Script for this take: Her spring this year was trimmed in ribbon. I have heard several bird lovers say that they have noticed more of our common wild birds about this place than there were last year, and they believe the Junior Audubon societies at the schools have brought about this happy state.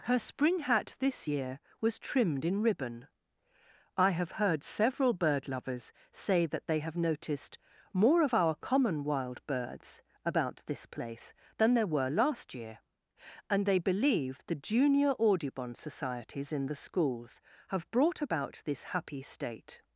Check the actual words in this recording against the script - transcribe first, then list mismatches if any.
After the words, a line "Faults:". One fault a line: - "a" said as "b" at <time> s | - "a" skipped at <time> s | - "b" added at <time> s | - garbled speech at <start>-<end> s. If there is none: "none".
Her spring hat this year was trimmed in ribbon. I have heard several bird lovers say that they have noticed more of our common wild birds about this place than there were last year, and they believe the Junior Audubon societies in the schools have brought about this happy state.
Faults:
- "hat" added at 0.6 s
- "at" said as "in" at 16.5 s